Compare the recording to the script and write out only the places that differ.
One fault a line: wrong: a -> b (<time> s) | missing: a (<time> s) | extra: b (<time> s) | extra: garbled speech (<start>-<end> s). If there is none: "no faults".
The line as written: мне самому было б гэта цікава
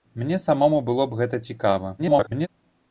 extra: garbled speech (2.0-2.5 s)